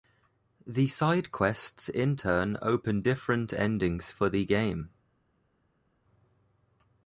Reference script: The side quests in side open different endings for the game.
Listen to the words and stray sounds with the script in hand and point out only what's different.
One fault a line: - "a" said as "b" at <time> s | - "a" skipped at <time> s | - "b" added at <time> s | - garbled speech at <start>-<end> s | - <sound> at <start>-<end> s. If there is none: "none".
- "side" said as "turn" at 2.1 s